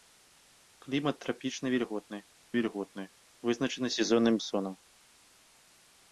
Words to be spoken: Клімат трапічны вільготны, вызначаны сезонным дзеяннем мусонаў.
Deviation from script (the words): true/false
true